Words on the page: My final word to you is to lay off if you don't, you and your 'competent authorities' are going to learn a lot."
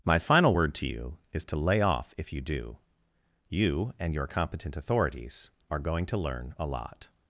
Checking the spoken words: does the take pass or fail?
fail